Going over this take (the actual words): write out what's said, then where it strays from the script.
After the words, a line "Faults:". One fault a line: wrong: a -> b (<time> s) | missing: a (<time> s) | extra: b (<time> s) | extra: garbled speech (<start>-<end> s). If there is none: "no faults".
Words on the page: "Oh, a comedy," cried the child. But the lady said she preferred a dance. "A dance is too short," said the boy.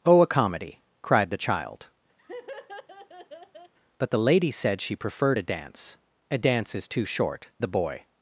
"Oh, a comedy," cried the child. But the lady said she preferred a dance. "A dance is too short," the boy.
Faults:
missing: said (7.5 s)